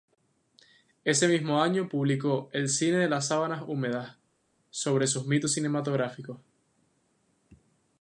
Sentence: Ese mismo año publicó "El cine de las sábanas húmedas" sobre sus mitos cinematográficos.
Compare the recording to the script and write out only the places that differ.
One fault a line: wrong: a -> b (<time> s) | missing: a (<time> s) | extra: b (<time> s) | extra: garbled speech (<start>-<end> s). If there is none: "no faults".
no faults